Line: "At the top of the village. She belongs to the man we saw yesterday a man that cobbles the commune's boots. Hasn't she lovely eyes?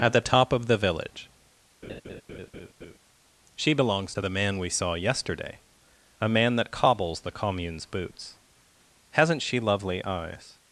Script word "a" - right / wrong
right